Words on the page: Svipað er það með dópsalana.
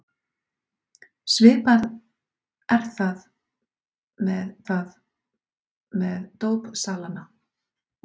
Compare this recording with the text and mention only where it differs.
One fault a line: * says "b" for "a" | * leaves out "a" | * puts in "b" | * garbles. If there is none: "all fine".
* puts in "það með"